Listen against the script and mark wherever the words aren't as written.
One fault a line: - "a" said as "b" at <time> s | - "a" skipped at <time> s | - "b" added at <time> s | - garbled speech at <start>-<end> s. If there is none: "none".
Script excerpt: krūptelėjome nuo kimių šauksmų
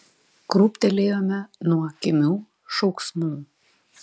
none